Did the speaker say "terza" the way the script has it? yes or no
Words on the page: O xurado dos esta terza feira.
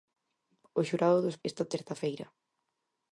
yes